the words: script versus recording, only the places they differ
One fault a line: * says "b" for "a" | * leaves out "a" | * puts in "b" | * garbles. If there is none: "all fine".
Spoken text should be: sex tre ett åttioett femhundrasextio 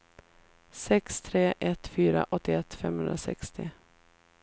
* puts in "fyra"